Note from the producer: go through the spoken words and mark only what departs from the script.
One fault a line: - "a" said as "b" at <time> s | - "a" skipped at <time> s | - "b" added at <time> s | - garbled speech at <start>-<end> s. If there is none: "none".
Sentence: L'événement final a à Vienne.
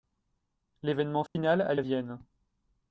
none